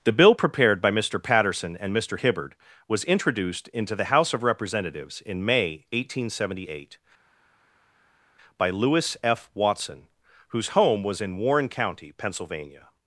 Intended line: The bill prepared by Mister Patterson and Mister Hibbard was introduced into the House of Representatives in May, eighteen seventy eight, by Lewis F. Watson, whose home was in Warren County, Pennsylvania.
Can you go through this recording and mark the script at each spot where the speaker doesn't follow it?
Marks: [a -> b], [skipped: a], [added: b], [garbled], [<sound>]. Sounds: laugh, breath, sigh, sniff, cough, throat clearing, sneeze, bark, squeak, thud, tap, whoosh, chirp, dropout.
The bill prepared by Mister Patterson and Mister Hibbard was introduced into the House of Representatives in May, eighteen seventy eight, by Lewis F. Watson, whose home was in Warren County, Pennsylvania.